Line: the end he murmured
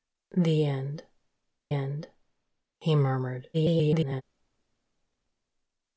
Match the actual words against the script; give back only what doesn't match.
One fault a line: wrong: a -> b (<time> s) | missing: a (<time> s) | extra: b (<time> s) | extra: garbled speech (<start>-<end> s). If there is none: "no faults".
extra: end (1.7 s)
extra: garbled speech (3.5-4.2 s)